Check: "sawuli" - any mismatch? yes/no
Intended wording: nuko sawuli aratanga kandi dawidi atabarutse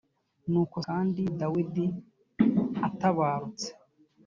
yes